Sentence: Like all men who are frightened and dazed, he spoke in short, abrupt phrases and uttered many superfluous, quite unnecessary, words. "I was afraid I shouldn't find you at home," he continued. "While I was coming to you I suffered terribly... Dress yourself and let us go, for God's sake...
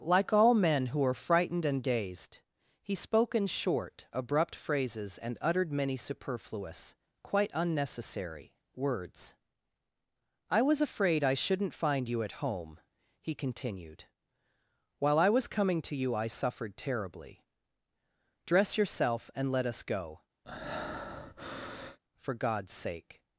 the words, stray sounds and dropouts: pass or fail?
fail